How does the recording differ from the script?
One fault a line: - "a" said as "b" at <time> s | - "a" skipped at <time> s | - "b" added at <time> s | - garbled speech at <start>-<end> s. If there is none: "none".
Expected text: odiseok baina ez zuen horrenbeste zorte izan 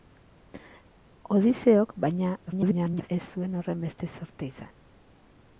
- garbled speech at 2.5-3.1 s